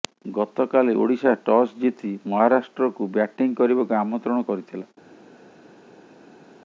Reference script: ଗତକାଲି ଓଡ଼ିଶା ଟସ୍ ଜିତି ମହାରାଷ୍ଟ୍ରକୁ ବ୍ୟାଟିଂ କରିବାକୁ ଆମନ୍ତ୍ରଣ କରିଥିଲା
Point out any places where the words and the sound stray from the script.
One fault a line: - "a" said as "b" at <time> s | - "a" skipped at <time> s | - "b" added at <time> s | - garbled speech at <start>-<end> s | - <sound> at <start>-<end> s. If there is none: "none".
none